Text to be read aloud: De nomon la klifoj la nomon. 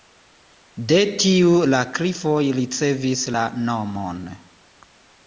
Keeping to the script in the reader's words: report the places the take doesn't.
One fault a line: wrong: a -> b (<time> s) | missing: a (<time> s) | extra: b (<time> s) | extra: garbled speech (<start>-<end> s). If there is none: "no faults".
wrong: nomon -> tiu (1.2 s)
extra: ricevis (2.6 s)